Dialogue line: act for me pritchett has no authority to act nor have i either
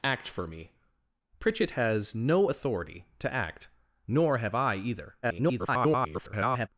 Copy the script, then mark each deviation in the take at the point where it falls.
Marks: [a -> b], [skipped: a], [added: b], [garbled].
act for me pritchett has no authority to act nor have i either [garbled]